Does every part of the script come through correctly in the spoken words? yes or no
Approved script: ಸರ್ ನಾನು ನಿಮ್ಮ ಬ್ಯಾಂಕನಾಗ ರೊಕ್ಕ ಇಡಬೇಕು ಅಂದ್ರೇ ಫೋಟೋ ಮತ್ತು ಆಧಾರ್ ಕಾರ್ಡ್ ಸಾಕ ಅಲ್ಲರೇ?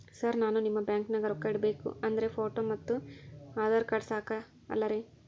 yes